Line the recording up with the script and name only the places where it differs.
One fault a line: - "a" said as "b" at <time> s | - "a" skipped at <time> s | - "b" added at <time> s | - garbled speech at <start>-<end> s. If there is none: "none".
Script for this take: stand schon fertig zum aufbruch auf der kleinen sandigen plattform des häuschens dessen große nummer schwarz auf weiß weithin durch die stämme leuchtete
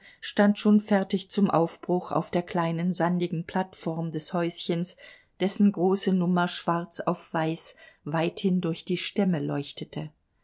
none